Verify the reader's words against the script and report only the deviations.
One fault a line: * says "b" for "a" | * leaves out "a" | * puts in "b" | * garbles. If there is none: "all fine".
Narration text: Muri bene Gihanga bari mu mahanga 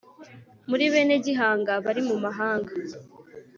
all fine